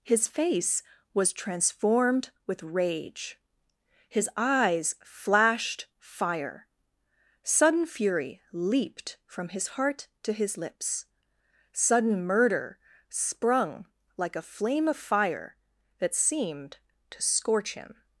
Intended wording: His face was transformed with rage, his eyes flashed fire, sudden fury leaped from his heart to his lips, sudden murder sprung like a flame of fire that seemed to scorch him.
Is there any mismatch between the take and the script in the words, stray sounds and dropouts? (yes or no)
no